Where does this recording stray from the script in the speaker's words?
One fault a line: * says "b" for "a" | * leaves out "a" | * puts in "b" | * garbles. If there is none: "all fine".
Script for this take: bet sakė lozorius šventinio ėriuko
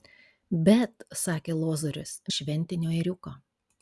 all fine